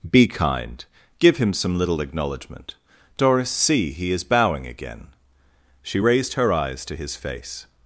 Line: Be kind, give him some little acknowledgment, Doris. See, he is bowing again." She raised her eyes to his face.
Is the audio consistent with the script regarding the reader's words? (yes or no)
yes